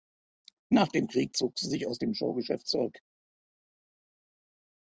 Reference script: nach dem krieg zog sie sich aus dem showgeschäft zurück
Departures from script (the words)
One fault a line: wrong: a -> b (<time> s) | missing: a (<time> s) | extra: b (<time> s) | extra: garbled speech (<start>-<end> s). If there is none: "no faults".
no faults